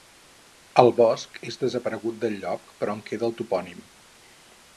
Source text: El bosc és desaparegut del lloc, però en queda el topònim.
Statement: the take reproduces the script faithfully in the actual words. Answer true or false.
true